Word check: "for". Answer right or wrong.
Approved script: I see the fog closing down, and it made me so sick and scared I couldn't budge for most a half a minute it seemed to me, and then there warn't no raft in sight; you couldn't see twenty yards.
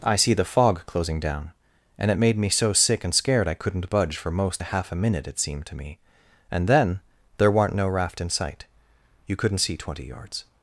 right